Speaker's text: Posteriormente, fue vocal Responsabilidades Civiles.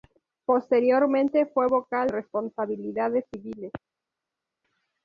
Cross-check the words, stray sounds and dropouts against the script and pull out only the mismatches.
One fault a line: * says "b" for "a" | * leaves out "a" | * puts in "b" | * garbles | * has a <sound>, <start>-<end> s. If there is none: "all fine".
all fine